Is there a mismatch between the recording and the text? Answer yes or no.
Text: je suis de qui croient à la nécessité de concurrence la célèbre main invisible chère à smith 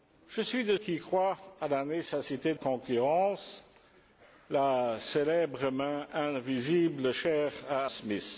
no